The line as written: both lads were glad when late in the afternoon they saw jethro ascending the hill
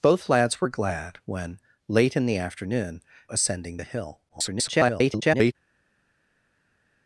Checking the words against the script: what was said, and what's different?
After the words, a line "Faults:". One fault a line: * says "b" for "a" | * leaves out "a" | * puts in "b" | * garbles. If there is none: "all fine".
both lads were glad when late in the afternoon ascending the hill [garbled]
Faults:
* leaves out "they saw jethro"
* garbles